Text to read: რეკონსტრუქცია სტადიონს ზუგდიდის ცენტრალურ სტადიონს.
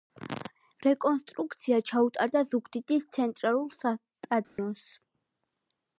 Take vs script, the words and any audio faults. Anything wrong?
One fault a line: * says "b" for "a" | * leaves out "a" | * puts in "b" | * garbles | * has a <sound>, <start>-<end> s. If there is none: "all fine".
* says "ჩაუტარდა" for "სტადიონს"
* has a dropout, 4.4-4.6 s